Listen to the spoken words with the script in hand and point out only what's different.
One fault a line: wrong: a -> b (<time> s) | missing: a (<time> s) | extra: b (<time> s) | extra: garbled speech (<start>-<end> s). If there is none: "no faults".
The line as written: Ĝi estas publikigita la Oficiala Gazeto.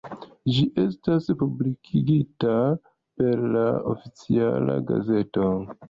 extra: per (3.2 s)